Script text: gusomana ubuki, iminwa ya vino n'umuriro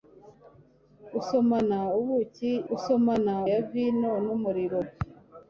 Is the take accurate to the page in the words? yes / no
no